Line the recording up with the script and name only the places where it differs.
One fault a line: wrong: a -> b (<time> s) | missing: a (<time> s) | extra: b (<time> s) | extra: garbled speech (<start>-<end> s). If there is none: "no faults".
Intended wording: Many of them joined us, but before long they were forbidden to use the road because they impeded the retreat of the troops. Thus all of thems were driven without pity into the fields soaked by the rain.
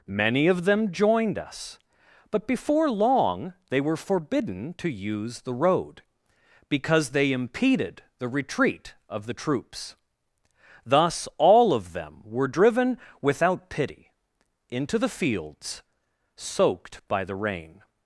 wrong: thems -> them (11.9 s)